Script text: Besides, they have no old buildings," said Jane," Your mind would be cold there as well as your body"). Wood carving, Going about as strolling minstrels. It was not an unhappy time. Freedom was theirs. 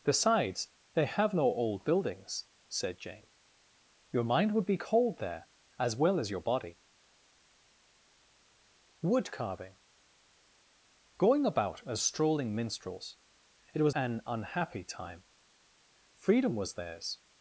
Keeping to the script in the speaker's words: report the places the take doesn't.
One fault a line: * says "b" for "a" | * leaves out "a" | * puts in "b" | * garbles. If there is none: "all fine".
* leaves out "not"